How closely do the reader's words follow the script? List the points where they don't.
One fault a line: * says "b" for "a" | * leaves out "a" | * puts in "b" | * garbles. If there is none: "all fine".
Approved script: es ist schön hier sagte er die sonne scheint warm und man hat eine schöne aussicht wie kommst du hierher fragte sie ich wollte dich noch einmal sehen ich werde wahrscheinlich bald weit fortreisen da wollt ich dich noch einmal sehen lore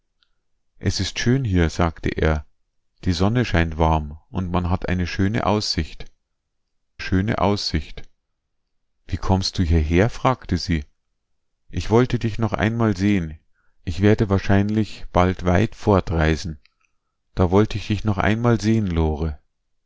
* puts in "schöne aussicht"